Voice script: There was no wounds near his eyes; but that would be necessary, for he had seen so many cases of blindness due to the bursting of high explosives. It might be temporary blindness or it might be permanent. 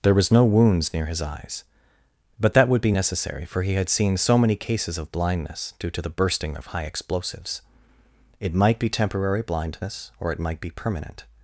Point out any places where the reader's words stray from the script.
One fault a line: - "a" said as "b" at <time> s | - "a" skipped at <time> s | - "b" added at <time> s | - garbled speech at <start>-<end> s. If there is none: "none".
none